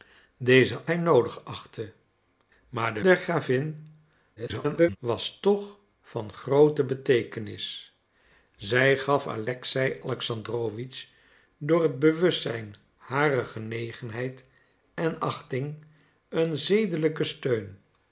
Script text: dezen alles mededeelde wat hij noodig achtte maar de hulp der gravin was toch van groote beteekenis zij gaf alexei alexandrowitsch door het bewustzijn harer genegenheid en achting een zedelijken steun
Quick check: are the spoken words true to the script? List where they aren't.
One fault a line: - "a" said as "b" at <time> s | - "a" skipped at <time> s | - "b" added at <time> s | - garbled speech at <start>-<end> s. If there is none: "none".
- "alles mededeelde wat" skipped at 0.9 s
- "hulp" skipped at 3.0 s
- garbled speech at 4.4-5.0 s